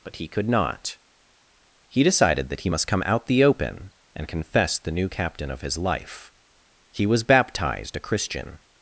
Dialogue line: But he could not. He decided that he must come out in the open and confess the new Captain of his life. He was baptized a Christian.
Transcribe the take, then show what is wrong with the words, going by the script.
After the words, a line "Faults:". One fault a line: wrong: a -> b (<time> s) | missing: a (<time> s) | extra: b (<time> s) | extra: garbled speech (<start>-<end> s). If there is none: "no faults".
But he could not. He decided that he must come out the open and confess the new Captain of his life. He was baptized a Christian.
Faults:
missing: in (3.3 s)